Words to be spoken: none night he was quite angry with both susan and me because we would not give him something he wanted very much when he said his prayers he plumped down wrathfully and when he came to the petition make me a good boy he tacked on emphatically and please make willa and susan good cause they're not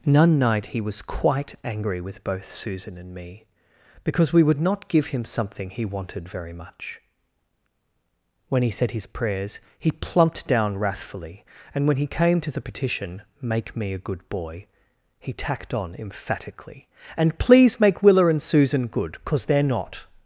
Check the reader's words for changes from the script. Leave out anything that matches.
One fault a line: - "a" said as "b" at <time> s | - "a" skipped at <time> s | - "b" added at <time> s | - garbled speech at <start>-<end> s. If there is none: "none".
none